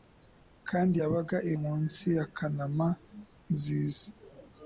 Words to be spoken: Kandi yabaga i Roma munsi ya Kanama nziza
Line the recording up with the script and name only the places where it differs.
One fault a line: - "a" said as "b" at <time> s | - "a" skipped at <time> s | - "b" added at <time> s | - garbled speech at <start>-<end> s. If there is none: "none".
- "Roma" skipped at 1.5 s